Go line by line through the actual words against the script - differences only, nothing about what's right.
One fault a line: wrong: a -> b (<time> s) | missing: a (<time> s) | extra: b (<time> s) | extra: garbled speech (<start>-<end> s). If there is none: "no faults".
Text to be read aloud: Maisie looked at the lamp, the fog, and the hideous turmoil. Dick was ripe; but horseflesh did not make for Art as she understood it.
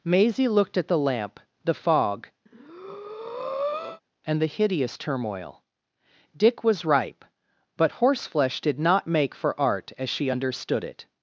no faults